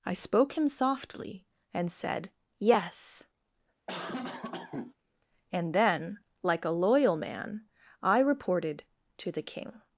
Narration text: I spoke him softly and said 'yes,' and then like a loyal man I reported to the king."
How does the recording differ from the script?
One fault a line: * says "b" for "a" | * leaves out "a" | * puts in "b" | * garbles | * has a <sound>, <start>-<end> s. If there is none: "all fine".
* has a cough, 3.9-4.9 s